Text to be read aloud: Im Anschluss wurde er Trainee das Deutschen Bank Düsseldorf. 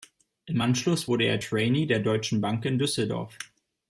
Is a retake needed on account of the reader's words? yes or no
yes